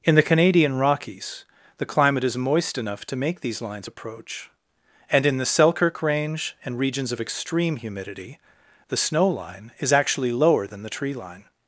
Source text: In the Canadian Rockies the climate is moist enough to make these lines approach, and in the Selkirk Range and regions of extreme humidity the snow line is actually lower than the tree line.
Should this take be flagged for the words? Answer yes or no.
no